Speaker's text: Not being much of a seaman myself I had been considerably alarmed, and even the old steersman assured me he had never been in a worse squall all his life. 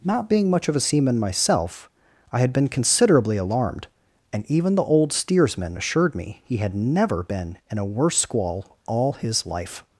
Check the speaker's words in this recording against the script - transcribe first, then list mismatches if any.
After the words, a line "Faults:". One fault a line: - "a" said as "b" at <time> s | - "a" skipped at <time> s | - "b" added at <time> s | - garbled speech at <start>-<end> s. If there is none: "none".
Not being much of a seaman myself I had been considerably alarmed, and even the old steersman assured me he had never been in a worse squall all his life.
Faults:
none